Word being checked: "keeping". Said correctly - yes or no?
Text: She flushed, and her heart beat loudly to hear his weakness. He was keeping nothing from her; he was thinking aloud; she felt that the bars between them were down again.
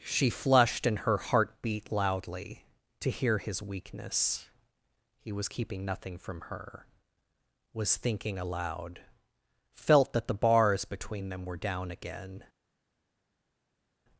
yes